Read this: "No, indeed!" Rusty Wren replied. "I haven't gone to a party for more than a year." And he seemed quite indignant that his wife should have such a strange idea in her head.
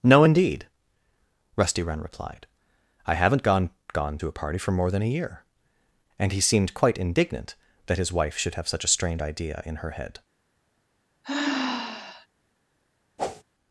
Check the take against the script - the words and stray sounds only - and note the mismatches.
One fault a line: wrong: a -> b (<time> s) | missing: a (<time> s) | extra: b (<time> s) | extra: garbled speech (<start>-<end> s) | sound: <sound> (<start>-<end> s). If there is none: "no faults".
extra: gone (3.9 s)
sound: sigh (11.2-12.3 s)
sound: whoosh (13.2-13.4 s)